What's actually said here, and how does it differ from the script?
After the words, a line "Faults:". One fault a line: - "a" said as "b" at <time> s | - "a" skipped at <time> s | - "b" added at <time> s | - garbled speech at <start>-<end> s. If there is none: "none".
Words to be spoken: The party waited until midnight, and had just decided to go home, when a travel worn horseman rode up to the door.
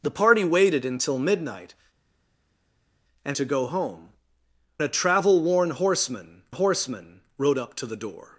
The party waited until midnight, and to go home, a travel worn horseman horseman rode up to the door.
Faults:
- "had just decided" skipped at 3.4 s
- "when" skipped at 4.1 s
- "horseman" added at 6.5 s